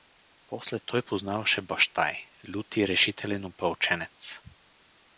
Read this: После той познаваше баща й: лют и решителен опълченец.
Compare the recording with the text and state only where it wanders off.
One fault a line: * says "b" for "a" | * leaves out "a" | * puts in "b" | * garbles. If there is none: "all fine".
all fine